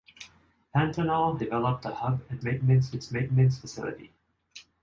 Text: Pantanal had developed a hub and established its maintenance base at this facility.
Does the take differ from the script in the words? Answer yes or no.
yes